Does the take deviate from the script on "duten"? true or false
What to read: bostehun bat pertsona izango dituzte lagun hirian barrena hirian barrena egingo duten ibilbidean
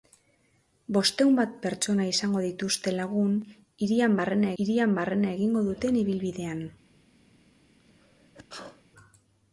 false